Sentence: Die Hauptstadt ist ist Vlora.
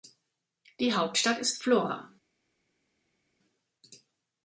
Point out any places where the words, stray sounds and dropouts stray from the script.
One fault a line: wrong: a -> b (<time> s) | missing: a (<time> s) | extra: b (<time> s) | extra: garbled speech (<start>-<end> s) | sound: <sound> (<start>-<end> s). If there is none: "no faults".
missing: ist (1.6 s)